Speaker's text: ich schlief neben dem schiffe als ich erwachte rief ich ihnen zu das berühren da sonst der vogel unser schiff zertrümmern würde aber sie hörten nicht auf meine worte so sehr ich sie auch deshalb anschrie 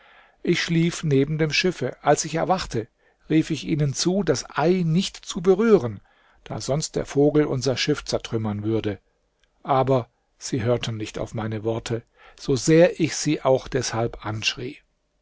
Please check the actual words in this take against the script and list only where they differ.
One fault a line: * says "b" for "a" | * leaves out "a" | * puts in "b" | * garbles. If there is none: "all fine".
* puts in "ei nicht zu"